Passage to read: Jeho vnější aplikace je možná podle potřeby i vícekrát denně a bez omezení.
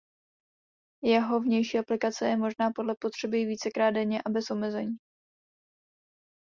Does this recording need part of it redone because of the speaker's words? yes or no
no